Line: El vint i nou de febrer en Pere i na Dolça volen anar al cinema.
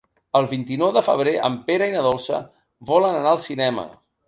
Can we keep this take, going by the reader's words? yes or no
yes